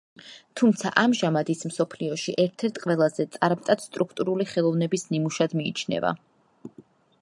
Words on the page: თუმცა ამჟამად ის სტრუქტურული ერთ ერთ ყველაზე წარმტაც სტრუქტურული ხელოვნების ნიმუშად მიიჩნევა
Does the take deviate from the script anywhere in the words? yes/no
yes